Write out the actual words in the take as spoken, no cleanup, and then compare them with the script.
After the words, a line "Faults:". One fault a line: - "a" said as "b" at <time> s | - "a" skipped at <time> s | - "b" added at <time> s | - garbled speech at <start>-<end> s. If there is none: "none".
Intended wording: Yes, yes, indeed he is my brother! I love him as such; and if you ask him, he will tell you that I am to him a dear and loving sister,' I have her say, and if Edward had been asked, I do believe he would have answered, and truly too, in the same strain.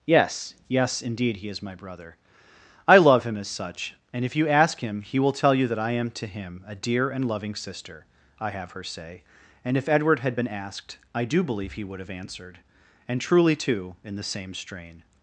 Yes, yes, indeed he is my brother! I love him as such; and if you ask him, he will tell you that I am to him a dear and loving sister,' I have her say, and if Edward had been asked, I do believe he would have answered, and truly too, in the same strain.
Faults:
none